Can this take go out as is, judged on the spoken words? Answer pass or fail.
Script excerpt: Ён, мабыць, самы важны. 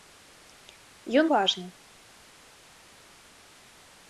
fail